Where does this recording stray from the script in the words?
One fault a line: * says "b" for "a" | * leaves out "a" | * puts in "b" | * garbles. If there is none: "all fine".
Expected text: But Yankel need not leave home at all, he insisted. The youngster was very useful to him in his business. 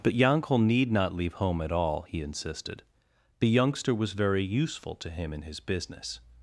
all fine